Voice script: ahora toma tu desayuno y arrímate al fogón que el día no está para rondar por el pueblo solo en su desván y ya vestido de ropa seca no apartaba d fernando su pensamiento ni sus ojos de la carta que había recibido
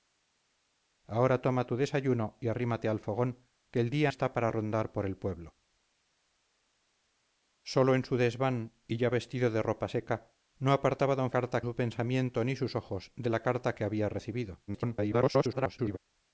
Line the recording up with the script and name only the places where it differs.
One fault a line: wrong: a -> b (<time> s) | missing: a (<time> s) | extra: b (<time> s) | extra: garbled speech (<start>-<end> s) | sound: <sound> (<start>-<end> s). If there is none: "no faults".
missing: no (4.1 s)
wrong: fernando -> carta (11.3 s)
extra: garbled speech (14.7-16.0 s)